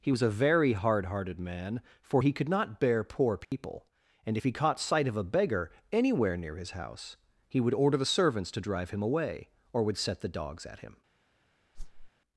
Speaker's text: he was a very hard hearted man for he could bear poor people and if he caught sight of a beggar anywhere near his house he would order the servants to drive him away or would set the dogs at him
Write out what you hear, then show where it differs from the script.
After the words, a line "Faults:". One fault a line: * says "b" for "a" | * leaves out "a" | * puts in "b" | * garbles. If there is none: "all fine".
he was a very hard hearted man for he could not bear poor people and if he caught sight of a beggar anywhere near his house he would order the servants to drive him away or would set the dogs at him
Faults:
* puts in "not"